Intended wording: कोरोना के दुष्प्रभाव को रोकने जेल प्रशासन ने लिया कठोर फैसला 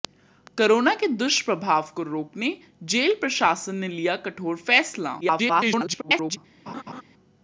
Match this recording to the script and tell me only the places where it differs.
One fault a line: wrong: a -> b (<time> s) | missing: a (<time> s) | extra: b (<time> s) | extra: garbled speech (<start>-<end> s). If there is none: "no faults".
extra: garbled speech (5.2-6.4 s)